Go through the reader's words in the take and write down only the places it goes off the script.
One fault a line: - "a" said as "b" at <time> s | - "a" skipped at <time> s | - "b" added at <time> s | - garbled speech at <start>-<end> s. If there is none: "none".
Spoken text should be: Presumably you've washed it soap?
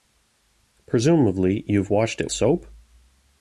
none